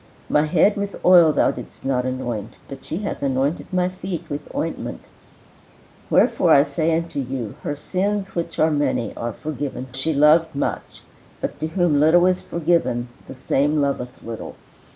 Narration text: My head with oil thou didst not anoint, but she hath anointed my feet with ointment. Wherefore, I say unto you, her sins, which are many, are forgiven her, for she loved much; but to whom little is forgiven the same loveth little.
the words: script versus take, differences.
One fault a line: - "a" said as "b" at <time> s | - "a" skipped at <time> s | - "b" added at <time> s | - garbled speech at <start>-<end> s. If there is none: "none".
- "her for" skipped at 9.9 s